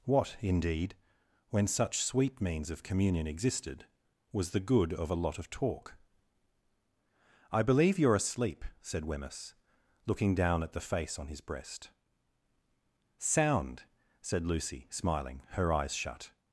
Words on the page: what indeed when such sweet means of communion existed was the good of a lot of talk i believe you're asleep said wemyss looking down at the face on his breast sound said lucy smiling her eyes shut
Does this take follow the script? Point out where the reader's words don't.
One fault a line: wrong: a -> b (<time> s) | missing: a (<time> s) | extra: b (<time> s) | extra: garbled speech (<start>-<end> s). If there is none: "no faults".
no faults